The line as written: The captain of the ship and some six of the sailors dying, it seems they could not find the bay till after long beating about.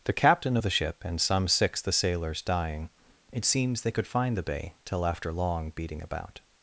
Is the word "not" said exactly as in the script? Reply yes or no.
no